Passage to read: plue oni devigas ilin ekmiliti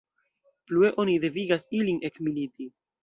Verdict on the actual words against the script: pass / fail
pass